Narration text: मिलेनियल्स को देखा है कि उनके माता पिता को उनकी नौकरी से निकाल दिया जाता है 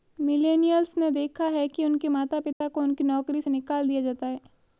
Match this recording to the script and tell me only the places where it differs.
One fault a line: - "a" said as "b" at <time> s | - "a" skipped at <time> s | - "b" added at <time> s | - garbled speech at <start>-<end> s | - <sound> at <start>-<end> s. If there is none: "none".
- "को" said as "ने" at 1.0 s
- dropout at 2.5-2.6 s